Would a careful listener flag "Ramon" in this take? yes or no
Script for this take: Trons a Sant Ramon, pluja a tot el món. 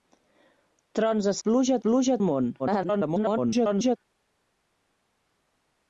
yes